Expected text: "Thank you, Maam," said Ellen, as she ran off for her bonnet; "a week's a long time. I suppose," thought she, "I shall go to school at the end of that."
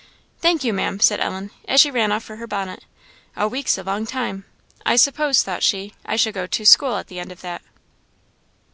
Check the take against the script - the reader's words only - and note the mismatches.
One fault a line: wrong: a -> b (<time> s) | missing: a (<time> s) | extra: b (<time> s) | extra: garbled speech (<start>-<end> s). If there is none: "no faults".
no faults